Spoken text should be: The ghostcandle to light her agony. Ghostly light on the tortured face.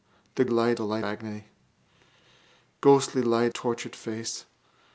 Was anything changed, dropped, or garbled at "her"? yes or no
yes